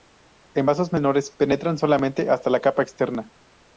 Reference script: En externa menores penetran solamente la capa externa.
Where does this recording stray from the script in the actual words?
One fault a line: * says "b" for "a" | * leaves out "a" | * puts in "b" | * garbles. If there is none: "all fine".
* says "vasos" for "externa"
* puts in "hasta"